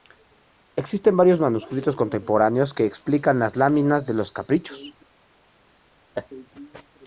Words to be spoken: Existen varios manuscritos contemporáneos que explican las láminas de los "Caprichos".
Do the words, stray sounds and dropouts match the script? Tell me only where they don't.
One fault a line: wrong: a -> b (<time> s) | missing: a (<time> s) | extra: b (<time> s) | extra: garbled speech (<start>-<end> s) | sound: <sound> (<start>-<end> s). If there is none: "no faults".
sound: laugh (6.1-6.3 s)